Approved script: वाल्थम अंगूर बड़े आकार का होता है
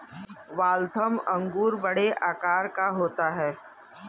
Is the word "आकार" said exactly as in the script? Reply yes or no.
yes